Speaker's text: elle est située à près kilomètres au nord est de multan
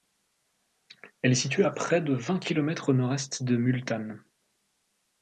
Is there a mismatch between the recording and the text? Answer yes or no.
yes